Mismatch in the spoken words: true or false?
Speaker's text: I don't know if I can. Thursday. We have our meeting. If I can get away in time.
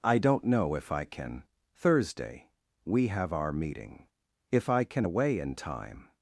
true